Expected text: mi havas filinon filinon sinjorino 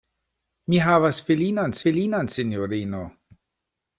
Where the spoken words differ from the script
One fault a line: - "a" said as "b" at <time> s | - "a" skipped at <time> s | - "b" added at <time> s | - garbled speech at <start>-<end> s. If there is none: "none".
none